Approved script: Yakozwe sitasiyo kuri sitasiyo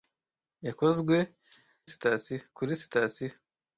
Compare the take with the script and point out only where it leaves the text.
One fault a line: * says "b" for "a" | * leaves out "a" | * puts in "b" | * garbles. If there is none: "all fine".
all fine